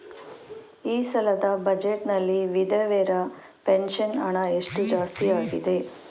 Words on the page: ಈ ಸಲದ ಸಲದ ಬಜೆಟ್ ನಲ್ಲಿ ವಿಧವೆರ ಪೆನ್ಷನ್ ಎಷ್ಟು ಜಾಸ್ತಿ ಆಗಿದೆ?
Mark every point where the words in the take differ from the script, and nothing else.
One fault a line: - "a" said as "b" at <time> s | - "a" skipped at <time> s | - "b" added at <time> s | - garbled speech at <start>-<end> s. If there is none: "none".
- "ಸಲದ" skipped at 1.5 s
- "ಹಣ" added at 4.2 s